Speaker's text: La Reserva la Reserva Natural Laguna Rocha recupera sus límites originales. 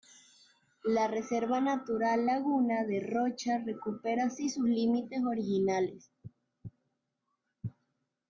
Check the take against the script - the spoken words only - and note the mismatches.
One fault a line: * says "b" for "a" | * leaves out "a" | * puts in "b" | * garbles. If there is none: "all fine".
* leaves out "la Reserva"
* puts in "de"
* puts in "así"